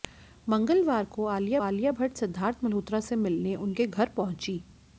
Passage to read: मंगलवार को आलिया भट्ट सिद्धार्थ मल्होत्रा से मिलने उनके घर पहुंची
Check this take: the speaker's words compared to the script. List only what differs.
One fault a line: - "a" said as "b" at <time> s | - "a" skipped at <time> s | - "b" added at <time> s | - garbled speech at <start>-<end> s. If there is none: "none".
- "आलिया" added at 1.6 s